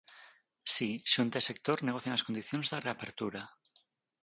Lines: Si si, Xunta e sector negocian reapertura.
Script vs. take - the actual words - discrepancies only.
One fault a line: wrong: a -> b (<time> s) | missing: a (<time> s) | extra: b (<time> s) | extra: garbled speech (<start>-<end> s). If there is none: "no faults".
missing: si (0.9 s)
extra: as condicións da (2.1 s)